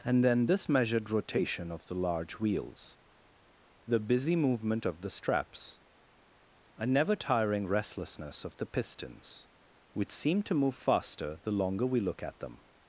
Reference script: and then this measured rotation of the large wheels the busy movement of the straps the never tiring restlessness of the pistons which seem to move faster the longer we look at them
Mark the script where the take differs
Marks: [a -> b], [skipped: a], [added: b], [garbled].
and then this measured rotation of the large wheels the busy movement of the straps [the -> a] never tiring restlessness of the pistons which seem to move faster the longer we look at them